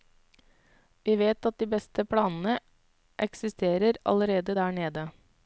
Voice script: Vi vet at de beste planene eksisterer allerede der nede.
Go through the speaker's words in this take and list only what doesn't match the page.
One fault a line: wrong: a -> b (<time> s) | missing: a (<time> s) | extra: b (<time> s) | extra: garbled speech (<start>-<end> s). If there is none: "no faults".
no faults